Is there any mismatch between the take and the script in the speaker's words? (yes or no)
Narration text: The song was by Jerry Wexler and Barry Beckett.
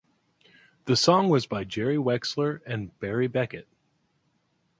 no